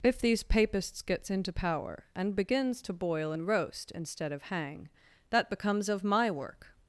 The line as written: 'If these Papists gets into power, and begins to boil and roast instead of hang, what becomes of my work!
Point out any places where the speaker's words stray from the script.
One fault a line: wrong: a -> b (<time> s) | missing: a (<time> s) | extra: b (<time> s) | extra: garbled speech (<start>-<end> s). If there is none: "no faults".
wrong: what -> that (5.3 s)